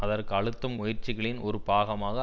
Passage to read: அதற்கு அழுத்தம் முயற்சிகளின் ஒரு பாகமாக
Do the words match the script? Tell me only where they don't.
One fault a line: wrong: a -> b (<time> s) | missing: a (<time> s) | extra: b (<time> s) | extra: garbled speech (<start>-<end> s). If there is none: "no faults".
no faults